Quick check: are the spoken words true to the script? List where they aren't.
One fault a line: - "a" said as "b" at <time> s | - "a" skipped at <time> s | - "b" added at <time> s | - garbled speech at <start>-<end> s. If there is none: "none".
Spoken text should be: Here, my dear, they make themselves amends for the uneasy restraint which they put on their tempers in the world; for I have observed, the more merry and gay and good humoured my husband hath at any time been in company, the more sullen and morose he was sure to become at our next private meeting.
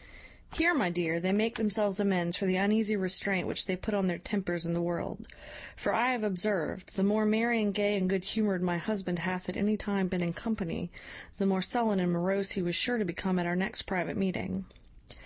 none